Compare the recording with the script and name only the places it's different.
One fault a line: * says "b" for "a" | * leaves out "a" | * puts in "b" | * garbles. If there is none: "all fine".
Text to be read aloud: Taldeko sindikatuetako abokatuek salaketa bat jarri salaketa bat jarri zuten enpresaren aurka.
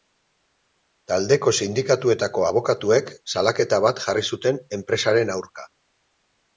* leaves out "salaketa bat jarri"